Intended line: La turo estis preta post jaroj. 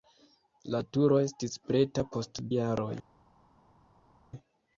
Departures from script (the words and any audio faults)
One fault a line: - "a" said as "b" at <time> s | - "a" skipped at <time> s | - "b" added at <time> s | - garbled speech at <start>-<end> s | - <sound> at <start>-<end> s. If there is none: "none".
none